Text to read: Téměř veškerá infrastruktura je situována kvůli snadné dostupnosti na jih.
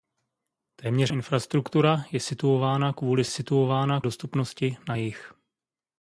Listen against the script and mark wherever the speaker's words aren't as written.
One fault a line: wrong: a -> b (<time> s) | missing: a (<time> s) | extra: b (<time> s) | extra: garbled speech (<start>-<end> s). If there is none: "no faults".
missing: veškerá (1.1 s)
wrong: snadné -> situována (3.3 s)